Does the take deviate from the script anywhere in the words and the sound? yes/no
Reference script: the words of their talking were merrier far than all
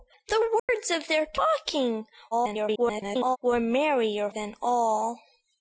yes